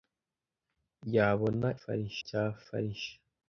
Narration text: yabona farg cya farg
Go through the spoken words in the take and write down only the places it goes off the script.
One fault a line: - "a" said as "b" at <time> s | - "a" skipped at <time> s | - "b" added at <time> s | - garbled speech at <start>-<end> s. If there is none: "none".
none